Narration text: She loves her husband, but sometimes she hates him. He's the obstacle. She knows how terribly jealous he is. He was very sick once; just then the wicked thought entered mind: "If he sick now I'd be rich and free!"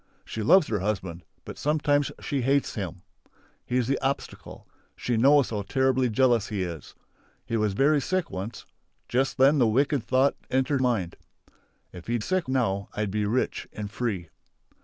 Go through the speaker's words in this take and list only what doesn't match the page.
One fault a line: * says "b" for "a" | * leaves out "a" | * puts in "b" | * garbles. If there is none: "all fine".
all fine